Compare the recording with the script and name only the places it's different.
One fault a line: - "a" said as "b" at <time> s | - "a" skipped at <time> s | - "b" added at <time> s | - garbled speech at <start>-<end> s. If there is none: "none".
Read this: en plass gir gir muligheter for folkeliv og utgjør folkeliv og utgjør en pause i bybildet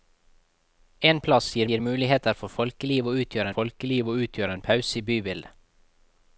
none